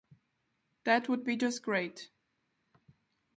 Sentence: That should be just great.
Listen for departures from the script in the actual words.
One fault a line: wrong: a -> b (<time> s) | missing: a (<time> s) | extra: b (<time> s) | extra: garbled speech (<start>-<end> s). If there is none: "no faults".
wrong: should -> would (1.1 s)